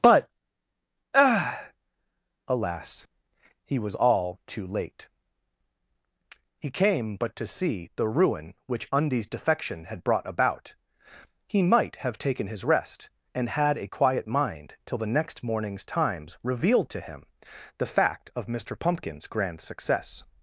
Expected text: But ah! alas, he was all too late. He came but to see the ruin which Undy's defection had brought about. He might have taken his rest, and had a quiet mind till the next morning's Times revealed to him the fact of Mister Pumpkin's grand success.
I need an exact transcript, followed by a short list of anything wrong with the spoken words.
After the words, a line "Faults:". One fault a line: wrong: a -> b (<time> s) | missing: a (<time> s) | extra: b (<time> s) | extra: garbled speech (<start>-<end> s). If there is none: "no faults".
But ah! alas, he was all too late. He came but to see the ruin which Undy's defection had brought about. He might have taken his rest, and had a quiet mind till the next morning's Times revealed to him the fact of Mister Pumpkin's grand success.
Faults:
no faults